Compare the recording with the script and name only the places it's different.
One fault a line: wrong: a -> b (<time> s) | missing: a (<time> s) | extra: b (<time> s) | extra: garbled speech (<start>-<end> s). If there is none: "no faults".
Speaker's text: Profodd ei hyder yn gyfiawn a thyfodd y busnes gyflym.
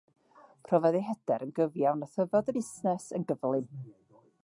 extra: yn (3.2 s)